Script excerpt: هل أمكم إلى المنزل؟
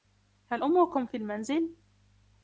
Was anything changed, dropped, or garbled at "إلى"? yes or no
yes